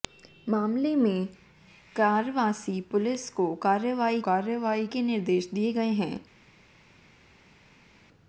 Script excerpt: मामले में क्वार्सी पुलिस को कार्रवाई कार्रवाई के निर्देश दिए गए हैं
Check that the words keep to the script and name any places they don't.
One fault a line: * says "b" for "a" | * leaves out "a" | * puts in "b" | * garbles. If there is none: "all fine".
all fine